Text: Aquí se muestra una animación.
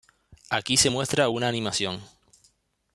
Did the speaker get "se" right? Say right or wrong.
right